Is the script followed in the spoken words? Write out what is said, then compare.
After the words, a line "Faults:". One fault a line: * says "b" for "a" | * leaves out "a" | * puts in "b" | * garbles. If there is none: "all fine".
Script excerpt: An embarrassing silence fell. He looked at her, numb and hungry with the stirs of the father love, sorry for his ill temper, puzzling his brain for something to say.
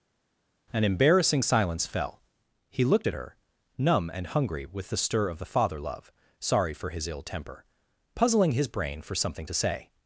An embarrassing silence fell. He looked at her, numb and hungry with the stir of the father love, sorry for his ill temper, puzzling his brain for something to say.
Faults:
* says "stir" for "stirs"